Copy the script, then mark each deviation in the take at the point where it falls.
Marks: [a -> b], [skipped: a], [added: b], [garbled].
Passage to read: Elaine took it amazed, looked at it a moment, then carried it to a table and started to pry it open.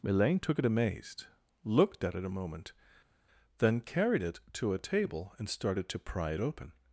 Elaine took it amazed, looked at it a moment, then carried it to a table and started to pry it open.